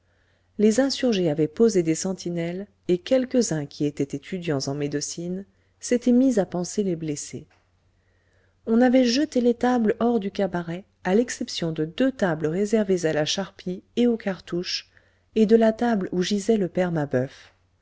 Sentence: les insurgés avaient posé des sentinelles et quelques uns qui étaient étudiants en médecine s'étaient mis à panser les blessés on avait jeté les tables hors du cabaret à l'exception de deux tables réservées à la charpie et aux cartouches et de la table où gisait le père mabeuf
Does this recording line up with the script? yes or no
yes